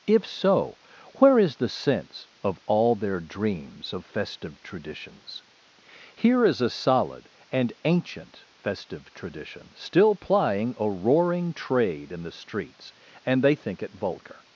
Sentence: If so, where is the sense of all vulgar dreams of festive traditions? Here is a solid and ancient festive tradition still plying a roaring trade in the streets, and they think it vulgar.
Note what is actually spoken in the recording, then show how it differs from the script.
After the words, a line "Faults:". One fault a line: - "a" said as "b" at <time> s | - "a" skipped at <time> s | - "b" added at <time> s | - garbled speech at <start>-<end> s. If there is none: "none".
If so, where is the sense of all their dreams of festive traditions? Here is a solid and ancient festive tradition still plying a roaring trade in the streets, and they think it vulgar.
Faults:
- "vulgar" said as "their" at 3.0 s